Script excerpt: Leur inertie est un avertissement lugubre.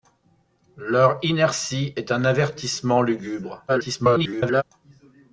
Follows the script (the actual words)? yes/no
no